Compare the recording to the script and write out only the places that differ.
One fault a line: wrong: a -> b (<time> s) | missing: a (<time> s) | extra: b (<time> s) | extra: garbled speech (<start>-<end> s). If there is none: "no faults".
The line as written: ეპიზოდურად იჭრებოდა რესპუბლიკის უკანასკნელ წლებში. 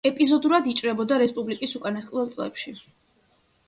no faults